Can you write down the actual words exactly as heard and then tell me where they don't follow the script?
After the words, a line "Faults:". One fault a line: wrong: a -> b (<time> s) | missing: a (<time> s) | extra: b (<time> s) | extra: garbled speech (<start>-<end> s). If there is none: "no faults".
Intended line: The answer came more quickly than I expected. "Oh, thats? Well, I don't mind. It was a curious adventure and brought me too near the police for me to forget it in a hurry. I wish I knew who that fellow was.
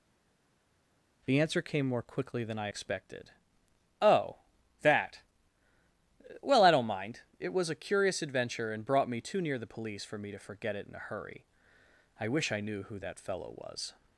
The answer came more quickly than I expected. "Oh, that? Well, I don't mind. It was a curious adventure and brought me too near the police for me to forget it in a hurry. I wish I knew who that fellow was.
Faults:
wrong: thats -> that (4.8 s)